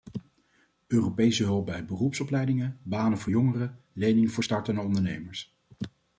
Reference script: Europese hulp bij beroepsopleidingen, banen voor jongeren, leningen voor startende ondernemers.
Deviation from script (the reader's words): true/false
false